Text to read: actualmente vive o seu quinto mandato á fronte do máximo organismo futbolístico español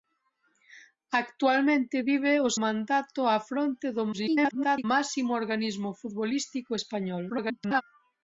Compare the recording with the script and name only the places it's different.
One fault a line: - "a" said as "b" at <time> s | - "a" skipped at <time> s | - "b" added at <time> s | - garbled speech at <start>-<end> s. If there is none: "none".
- "seu quinto" skipped at 2.5 s
- garbled speech at 4.1-4.8 s
- garbled speech at 7.3-7.8 s